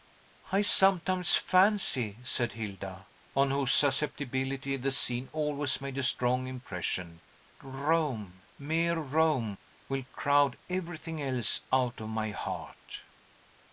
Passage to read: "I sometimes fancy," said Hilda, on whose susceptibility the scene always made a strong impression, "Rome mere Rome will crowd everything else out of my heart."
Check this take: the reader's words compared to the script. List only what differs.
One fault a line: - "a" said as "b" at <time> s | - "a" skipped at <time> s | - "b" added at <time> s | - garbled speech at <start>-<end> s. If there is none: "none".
none